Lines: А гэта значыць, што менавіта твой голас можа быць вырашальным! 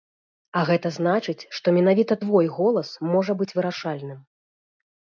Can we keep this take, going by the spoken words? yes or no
yes